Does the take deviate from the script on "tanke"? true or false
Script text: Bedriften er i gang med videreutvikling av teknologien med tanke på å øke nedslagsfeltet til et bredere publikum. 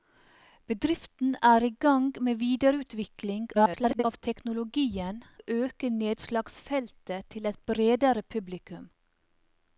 true